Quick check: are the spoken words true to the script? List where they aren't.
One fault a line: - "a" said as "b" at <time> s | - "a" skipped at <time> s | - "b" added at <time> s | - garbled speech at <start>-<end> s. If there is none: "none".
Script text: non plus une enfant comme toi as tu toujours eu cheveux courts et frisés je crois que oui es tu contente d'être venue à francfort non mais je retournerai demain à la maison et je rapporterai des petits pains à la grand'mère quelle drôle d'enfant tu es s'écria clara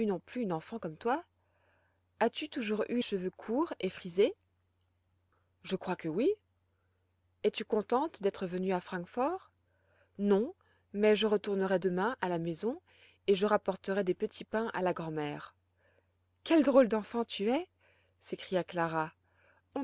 none